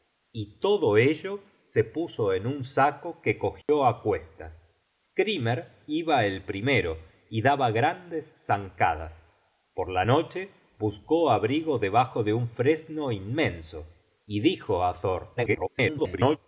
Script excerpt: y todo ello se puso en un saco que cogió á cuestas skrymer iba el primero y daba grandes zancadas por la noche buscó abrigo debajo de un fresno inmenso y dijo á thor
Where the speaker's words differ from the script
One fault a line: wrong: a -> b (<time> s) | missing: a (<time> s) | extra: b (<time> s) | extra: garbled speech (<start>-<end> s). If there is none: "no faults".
extra: garbled speech (15.4-16.4 s)